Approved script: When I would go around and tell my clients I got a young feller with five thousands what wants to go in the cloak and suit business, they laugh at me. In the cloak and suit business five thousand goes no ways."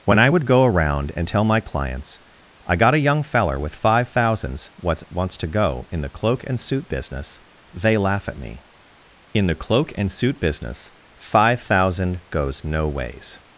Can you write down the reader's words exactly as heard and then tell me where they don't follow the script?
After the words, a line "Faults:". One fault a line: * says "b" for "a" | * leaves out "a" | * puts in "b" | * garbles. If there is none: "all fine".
When I would go around and tell my clients I got a young feller with five thousands what wants to go in the cloak and suit business, they laugh at me. In the cloak and suit business five thousand goes no ways."
Faults:
all fine